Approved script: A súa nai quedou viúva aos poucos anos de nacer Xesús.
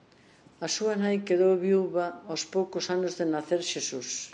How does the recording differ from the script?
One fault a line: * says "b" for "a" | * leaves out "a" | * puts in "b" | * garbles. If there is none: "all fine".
all fine